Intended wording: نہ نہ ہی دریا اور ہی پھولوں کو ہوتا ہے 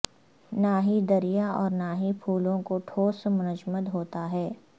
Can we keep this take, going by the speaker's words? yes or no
no